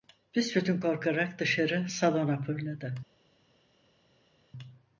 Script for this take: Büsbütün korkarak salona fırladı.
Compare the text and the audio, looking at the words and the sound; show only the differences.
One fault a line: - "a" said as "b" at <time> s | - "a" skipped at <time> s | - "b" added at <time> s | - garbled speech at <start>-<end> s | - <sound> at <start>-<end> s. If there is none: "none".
- "dışarı" added at 1.4 s